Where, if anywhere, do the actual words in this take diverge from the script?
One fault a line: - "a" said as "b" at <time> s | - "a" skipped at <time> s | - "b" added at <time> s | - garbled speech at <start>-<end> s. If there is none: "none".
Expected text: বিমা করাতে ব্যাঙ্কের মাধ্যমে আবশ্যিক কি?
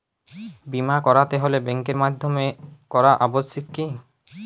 - "হলে" added at 1.4 s
- "করা" added at 2.9 s